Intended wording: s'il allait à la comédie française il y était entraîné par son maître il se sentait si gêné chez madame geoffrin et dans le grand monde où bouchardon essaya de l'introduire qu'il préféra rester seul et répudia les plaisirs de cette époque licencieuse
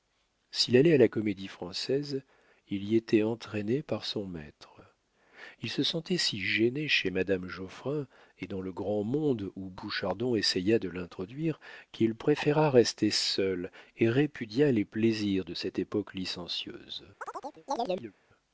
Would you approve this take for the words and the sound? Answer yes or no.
no